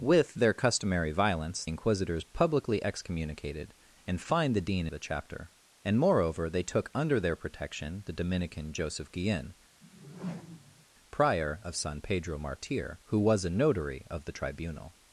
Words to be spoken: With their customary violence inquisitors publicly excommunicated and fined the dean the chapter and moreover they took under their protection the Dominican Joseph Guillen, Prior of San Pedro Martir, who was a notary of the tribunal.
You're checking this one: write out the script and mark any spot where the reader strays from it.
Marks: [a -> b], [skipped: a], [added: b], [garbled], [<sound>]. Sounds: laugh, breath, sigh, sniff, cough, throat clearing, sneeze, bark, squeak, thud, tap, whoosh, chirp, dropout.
With their customary violence inquisitors publicly excommunicated and fined the dean the chapter and moreover they took under their protection the Dominican Joseph Guillen, [whoosh] Prior of San Pedro Martir, who was a notary of the tribunal.